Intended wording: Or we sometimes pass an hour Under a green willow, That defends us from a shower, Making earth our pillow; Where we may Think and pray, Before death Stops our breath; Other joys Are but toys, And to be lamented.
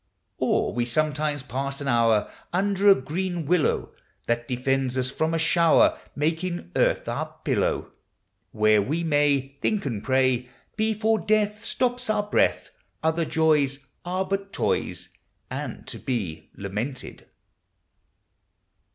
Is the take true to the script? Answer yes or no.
yes